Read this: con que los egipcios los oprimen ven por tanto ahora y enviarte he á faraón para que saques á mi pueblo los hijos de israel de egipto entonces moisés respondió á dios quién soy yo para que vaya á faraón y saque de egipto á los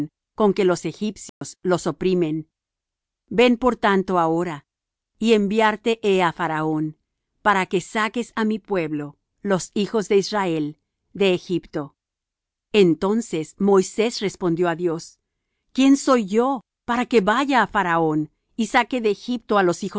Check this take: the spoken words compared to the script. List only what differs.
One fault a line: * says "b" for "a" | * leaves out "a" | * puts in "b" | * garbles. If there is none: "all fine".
all fine